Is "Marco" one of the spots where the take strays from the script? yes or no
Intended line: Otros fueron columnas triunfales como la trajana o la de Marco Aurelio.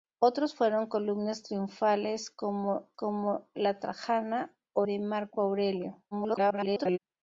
no